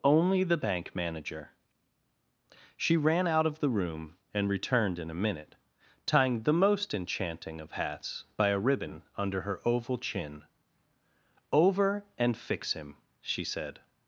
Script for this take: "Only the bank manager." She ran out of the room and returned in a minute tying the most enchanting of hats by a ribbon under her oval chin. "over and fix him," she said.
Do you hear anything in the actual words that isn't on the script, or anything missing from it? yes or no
no